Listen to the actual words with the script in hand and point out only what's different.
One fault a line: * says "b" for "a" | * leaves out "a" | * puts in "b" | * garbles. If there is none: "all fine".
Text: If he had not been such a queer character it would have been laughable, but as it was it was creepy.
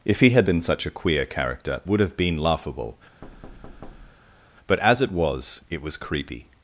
* leaves out "not"
* leaves out "it"